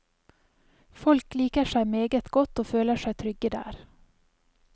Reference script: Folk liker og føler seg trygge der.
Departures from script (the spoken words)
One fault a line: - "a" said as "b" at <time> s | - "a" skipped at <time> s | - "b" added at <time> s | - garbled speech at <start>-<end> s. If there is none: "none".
- "seg meget godt" added at 1.7 s